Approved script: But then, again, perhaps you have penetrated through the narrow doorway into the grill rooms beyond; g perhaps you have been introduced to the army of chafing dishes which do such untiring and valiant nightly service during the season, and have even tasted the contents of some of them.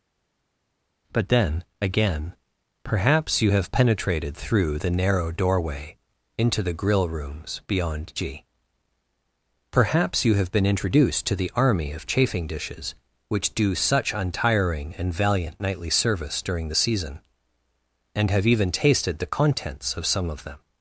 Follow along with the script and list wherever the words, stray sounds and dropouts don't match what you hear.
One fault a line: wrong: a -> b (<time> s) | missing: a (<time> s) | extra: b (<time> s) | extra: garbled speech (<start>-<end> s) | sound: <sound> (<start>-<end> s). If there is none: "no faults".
no faults